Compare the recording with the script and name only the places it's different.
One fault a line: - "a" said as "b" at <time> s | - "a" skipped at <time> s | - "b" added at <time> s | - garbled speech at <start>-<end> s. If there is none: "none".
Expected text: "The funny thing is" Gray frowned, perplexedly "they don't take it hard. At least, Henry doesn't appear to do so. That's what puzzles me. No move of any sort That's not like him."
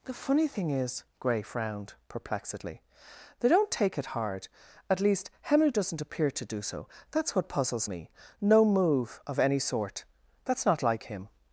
none